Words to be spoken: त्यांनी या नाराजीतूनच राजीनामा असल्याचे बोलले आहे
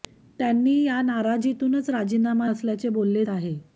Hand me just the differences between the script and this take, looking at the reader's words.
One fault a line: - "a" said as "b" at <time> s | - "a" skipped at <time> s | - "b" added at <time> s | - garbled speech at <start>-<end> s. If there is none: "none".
none